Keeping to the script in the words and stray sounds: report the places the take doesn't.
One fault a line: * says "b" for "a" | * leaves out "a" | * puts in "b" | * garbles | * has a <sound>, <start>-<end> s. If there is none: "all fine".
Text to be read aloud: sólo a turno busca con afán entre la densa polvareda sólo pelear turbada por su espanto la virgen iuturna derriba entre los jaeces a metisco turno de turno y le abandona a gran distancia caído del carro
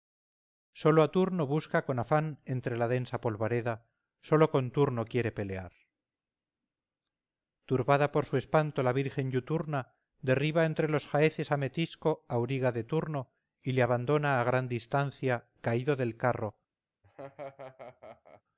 * puts in "con turno quiere"
* says "auriga" for "turno"
* has a laugh, 17.0-18.4 s